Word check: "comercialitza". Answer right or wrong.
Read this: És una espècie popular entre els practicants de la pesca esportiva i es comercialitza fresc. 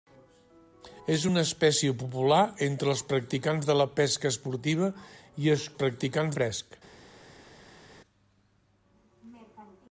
wrong